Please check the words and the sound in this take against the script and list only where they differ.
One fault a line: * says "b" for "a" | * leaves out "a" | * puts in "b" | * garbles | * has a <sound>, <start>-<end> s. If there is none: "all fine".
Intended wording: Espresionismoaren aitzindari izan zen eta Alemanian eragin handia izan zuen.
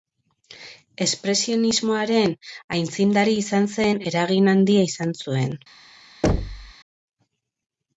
* leaves out "eta Alemanian"
* has a thud, 6.2-6.7 s